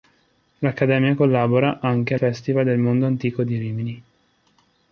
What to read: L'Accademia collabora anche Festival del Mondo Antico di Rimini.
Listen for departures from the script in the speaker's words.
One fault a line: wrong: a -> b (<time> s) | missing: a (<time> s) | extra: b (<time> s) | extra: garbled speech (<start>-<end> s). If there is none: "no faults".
no faults